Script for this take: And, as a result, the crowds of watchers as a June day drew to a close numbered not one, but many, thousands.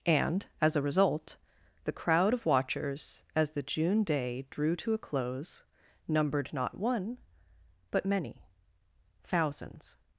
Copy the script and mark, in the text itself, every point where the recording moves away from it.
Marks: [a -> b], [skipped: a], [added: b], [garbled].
And, as a result, the [crowds -> crowd] of watchers as [a -> the] June day drew to a close numbered not one, but many, thousands.